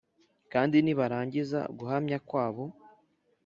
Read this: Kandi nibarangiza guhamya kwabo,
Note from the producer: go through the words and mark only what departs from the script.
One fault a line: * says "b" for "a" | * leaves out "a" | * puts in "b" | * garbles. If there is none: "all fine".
all fine